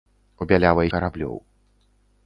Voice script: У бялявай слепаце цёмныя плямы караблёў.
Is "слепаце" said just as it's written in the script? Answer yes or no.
no